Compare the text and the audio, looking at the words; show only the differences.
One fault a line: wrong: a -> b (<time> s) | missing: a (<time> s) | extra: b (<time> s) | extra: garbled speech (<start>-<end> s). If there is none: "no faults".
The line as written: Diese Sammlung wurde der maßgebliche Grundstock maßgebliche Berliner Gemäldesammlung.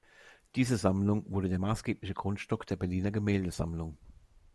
wrong: maßgebliche -> der (2.6 s)